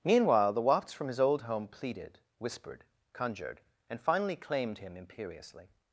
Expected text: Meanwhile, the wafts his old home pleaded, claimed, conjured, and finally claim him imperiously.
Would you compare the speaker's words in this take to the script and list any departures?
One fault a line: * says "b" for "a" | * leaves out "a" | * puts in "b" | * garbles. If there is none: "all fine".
* puts in "from"
* says "whispered" for "claimed"
* says "claimed" for "claim"